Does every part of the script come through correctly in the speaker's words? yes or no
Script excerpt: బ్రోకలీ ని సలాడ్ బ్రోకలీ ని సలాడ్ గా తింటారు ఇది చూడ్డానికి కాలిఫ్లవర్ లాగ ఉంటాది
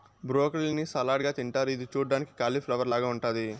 no